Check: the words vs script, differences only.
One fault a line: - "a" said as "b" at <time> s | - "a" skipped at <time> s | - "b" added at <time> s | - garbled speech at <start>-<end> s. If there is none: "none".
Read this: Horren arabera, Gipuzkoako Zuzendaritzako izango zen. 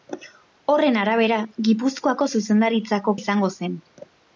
none